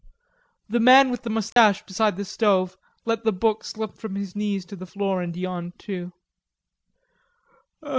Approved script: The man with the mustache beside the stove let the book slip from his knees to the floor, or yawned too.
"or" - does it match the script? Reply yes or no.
no